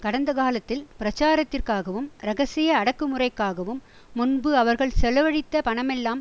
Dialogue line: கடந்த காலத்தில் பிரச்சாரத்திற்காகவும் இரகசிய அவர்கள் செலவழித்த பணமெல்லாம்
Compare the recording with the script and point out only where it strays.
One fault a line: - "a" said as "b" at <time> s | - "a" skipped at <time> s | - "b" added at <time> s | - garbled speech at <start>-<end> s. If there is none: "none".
- "அடக்குமுறைக்காகவும் முன்பு" added at 2.8 s